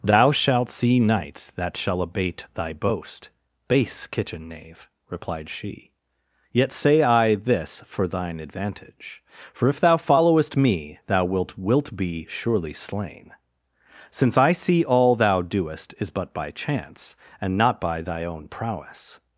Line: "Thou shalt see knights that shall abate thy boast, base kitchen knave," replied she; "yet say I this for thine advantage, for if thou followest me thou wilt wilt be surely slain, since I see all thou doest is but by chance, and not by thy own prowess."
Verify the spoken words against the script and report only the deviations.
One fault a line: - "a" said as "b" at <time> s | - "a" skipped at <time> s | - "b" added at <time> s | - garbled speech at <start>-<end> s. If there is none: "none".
none